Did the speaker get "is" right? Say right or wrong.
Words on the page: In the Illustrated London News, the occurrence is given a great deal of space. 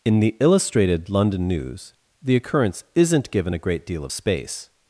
wrong